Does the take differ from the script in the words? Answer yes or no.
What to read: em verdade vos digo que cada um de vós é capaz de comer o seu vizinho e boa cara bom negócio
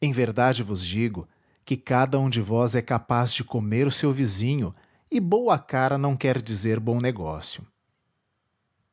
yes